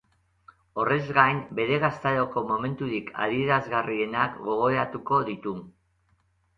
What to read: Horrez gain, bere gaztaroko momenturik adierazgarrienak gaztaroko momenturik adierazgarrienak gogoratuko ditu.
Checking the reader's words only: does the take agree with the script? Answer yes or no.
no